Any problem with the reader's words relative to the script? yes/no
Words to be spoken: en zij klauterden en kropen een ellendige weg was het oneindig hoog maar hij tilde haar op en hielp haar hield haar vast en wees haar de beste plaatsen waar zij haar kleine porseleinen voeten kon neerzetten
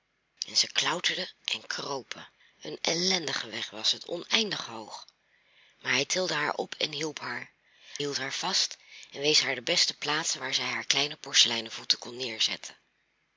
no